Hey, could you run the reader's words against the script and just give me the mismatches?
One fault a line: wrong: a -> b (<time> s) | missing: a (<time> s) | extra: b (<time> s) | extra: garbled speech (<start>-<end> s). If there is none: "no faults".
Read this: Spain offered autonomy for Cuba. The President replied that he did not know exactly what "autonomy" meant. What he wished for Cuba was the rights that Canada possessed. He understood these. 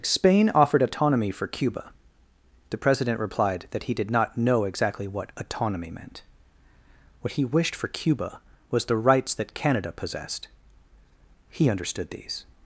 no faults